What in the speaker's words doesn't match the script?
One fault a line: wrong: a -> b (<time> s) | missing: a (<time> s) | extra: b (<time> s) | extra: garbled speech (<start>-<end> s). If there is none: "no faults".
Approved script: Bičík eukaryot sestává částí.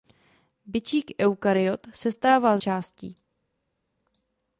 no faults